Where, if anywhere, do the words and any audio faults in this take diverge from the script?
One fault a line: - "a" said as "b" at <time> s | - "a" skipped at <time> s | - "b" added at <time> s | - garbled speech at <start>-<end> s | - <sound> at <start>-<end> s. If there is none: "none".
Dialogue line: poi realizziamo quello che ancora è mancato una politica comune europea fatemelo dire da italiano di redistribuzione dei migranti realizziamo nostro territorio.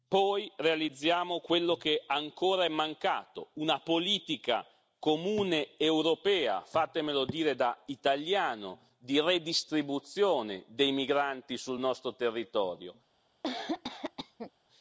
- "realizziamo" said as "sul" at 11.6 s
- cough at 13.4-14.5 s